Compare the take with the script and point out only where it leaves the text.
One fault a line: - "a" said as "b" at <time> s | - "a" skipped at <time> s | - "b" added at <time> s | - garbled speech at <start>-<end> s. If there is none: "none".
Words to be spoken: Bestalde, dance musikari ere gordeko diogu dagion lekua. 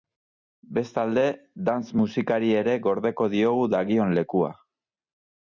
none